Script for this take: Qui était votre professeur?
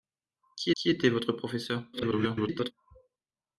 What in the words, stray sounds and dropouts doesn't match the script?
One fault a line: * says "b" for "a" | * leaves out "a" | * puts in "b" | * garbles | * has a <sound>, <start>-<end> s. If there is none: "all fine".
* puts in "qui"
* garbles